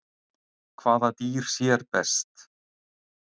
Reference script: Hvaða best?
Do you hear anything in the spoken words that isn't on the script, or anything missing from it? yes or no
yes